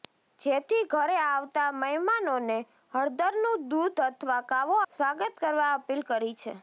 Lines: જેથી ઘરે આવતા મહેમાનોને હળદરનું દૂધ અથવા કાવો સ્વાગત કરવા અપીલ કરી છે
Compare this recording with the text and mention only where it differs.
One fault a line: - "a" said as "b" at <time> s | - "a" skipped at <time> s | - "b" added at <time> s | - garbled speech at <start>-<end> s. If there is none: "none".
none